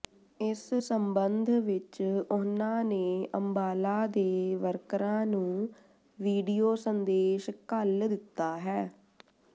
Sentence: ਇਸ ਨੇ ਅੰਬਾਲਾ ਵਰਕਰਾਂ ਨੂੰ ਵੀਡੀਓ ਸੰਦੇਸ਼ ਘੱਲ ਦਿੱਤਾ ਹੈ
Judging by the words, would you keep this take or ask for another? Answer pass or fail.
fail